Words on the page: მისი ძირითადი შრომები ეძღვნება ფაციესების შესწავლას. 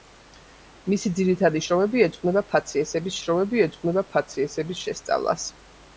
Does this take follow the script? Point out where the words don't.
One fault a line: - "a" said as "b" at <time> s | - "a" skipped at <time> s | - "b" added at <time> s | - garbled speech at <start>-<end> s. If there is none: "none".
- "შრომები ეძღვნება ფაციესების" added at 3.2 s